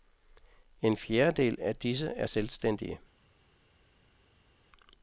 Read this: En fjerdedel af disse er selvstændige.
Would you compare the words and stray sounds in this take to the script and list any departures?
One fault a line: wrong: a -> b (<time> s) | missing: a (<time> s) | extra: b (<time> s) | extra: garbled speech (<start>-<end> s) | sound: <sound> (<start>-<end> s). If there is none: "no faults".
no faults